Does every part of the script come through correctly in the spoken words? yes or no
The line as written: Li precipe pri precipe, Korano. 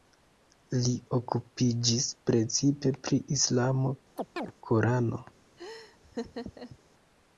no